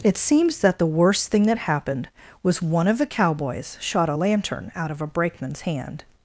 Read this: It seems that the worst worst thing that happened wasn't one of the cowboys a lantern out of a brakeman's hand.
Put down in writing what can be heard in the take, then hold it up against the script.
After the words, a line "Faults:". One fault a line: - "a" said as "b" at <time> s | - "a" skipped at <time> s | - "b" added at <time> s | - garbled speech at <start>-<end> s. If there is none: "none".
It seems that the worst thing that happened was one of the cowboys shot a lantern out of a brakeman's hand.
Faults:
- "worst" skipped at 1.3 s
- "wasn't" said as "was" at 2.4 s
- "shot" added at 3.8 s